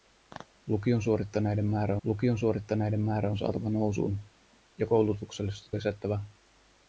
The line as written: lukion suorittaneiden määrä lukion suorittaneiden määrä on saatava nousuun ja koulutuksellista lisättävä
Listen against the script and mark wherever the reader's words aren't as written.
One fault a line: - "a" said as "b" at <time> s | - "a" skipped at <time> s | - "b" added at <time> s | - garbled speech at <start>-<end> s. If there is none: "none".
none